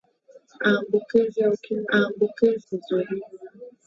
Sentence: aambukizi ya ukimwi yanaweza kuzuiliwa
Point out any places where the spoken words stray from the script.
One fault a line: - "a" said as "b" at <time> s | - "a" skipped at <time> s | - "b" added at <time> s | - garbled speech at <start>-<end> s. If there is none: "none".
- "yanaweza" said as "aambukizi" at 1.9 s